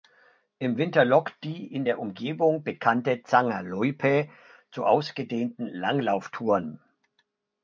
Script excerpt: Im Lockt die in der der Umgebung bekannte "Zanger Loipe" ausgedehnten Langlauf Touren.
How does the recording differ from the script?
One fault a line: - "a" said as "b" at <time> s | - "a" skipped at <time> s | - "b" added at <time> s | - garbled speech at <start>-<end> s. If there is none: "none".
- "Winter" added at 0.8 s
- "der" skipped at 2.0 s
- "zu" added at 4.7 s